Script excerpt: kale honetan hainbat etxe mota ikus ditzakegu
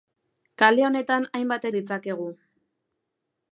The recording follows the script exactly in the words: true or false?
false